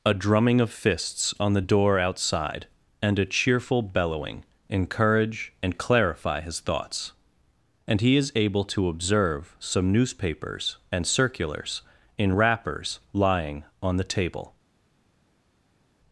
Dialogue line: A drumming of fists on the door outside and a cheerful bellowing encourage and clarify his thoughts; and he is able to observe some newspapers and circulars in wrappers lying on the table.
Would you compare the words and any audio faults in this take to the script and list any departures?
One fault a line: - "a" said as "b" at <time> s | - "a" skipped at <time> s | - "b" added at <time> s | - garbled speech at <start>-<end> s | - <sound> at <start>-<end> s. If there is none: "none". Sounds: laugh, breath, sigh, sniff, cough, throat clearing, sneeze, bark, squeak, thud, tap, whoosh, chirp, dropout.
none